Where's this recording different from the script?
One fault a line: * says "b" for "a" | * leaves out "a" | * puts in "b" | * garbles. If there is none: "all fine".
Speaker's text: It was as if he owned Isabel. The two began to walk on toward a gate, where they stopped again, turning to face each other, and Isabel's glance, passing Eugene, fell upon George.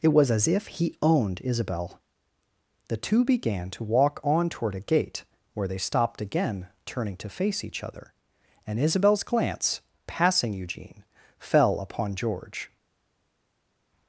all fine